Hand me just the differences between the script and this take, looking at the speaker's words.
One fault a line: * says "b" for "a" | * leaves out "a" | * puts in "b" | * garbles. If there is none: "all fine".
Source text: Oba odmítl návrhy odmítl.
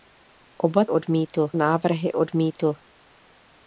all fine